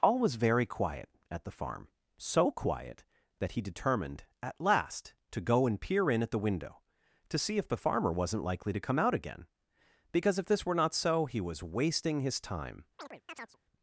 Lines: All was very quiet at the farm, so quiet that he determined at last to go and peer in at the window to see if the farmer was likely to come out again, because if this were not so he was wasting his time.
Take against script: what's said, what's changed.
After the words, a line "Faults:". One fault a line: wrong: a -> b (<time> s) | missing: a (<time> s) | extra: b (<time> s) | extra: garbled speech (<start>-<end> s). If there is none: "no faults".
All was very quiet at the farm, so quiet that he determined at last to go and peer in at the window to see if the farmer wasn't likely to come out again, because if this were not so he was wasting his time.
Faults:
wrong: was -> wasn't (8.1 s)